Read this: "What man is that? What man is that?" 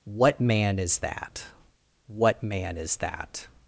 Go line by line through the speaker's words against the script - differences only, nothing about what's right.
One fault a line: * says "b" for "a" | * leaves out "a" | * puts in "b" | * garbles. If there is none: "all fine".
all fine